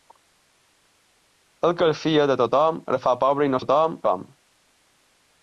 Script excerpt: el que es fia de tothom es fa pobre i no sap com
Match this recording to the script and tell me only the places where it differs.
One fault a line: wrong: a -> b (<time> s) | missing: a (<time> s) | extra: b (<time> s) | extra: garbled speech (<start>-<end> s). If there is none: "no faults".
wrong: sap -> tothom (3.6 s)